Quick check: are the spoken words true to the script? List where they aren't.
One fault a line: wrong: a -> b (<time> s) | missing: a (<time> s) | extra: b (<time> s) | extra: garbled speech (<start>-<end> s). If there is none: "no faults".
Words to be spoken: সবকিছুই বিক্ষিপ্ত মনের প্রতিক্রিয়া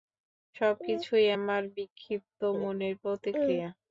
extra: আমার (1.4 s)